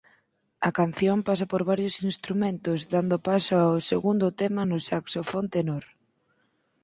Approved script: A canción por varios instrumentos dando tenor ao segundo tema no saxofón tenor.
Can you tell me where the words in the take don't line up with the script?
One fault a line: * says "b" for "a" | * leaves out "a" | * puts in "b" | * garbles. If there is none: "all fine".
* puts in "pasa"
* says "paso" for "tenor"